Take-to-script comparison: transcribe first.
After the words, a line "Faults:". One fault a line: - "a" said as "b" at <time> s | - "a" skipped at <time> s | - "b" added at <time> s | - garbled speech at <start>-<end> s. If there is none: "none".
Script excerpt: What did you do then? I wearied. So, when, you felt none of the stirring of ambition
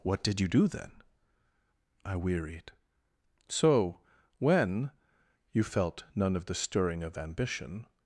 What did you do then? I wearied. So, when, you felt none of the stirring of ambition
Faults:
none